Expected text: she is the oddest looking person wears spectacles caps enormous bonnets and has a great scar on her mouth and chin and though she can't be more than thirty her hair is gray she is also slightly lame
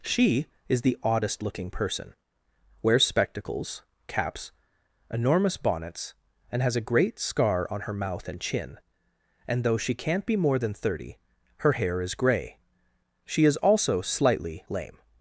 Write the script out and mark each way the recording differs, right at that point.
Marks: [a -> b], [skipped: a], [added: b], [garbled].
she is the oddest looking person wears spectacles caps enormous bonnets and has a great scar on her mouth and chin and though she can't be more than thirty her hair is gray she is also slightly lame